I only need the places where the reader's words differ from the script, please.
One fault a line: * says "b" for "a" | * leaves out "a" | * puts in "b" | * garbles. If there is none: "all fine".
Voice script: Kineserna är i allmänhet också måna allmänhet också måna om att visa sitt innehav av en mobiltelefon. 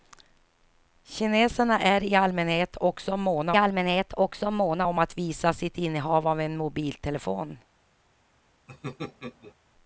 all fine